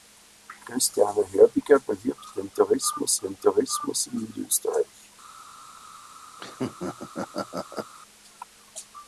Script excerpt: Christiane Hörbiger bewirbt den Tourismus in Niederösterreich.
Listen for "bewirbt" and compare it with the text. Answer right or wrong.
right